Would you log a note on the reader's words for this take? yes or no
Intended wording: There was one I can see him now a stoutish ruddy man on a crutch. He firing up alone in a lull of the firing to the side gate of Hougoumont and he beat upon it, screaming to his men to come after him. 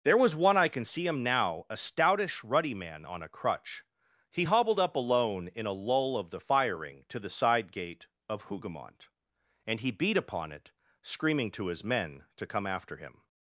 yes